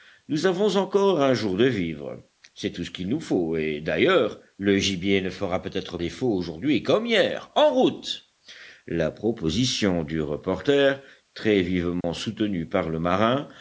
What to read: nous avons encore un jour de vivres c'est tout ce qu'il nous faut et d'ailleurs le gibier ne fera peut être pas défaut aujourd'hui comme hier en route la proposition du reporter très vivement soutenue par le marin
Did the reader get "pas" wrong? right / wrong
wrong